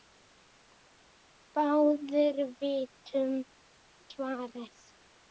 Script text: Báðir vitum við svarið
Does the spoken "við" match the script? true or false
false